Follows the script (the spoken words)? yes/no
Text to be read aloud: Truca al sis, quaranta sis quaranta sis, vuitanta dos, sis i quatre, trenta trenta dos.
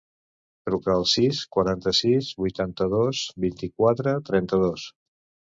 no